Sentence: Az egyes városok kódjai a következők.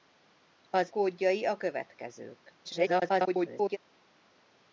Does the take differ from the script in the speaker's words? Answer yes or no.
yes